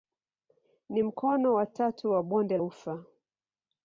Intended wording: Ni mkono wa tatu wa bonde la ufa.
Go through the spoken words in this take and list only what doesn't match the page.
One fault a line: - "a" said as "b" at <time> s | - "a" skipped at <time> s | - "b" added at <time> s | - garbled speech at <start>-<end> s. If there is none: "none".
- "la" skipped at 2.6 s